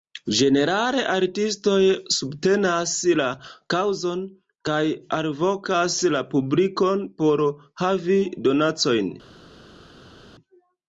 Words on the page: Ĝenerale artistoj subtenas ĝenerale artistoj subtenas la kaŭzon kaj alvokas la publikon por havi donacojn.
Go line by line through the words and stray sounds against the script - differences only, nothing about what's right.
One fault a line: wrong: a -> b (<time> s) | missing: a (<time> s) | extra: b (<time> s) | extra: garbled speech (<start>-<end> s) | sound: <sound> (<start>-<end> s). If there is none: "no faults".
missing: ĝenerale artistoj subtenas (2.9 s)